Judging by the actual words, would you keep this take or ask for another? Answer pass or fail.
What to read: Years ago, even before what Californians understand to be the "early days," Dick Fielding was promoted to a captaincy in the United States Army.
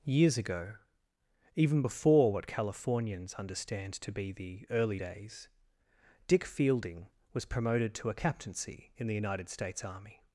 pass